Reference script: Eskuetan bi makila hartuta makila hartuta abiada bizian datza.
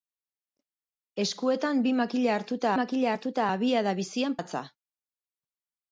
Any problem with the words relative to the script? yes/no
no